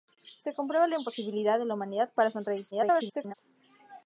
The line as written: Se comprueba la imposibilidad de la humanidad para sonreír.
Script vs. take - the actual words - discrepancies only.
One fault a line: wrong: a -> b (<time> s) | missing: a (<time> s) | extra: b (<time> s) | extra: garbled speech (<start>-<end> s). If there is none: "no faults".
extra: garbled speech (2.7-3.3 s)